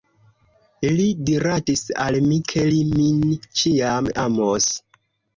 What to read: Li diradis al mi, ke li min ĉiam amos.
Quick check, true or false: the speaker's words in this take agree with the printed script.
true